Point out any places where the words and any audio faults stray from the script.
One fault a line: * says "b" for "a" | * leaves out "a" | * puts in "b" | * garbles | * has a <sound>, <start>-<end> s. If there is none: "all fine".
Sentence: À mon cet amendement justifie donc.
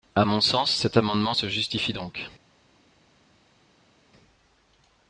* puts in "sens"
* puts in "se"